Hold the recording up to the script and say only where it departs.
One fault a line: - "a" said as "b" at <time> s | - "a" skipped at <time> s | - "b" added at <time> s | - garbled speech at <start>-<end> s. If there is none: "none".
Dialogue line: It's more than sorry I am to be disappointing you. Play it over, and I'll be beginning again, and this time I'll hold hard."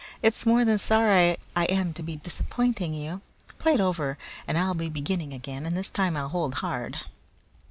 none